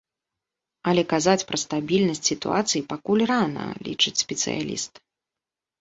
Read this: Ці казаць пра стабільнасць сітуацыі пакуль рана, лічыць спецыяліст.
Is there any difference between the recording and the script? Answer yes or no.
yes